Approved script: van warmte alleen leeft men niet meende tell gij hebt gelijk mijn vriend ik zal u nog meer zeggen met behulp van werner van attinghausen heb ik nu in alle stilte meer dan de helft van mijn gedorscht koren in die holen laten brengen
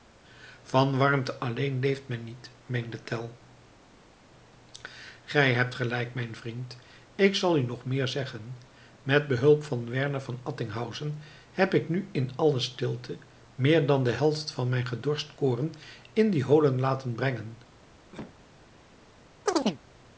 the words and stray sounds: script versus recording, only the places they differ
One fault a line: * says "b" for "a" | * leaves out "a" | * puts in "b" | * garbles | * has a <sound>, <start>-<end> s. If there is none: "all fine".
* has a cough, 18.1-18.4 s
* has a chirp, 19.5-19.8 s